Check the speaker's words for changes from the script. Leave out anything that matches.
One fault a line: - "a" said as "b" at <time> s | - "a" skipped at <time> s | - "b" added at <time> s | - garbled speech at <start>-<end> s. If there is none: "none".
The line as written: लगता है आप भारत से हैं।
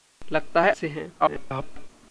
- "आप भारत" skipped at 0.7 s
- garbled speech at 1.2-1.9 s